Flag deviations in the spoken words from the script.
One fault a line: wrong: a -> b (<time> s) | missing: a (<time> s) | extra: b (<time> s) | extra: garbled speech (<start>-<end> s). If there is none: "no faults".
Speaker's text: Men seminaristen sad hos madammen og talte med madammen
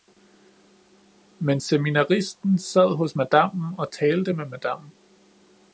no faults